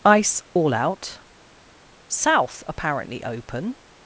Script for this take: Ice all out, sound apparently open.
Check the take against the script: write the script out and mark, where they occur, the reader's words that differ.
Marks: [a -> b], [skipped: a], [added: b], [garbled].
Ice all out, [sound -> south] apparently open.